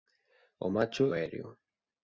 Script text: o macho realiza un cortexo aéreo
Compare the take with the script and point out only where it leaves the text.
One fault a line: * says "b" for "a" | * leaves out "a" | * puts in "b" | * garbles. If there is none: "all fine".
* leaves out "realiza un cortexo"